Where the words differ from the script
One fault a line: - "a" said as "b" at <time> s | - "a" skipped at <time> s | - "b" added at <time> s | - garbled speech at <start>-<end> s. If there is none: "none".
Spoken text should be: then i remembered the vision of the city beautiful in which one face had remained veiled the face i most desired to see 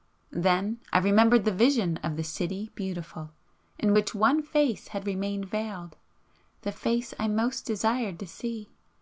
none